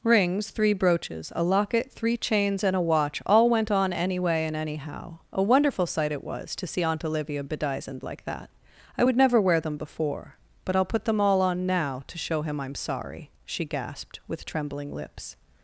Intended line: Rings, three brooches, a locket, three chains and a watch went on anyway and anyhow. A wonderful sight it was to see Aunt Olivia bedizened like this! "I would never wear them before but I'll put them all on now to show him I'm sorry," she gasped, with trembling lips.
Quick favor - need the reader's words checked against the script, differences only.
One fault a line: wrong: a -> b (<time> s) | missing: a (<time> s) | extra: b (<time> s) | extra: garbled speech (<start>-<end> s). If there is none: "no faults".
extra: all (3.3 s)
wrong: this -> that (8.2 s)